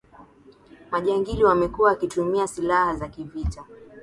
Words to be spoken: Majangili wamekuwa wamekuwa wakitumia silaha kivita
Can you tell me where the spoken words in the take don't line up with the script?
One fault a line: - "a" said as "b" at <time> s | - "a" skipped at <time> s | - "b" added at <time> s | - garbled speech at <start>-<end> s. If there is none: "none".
- "wamekuwa" skipped at 1.9 s
- "za" added at 2.9 s